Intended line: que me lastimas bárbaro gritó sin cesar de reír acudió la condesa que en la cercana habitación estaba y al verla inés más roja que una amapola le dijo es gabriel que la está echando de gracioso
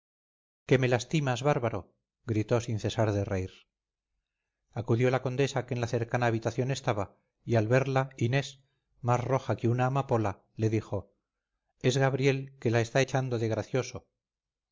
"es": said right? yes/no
yes